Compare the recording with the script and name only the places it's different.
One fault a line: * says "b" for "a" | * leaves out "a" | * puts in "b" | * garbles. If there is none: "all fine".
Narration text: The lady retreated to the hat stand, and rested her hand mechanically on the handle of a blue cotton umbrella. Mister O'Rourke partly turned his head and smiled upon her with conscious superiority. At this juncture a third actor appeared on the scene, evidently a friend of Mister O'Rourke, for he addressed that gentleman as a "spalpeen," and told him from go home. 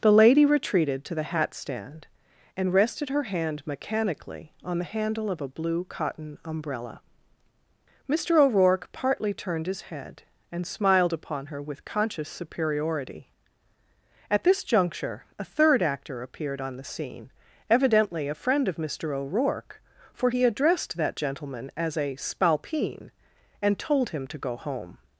* says "to" for "from"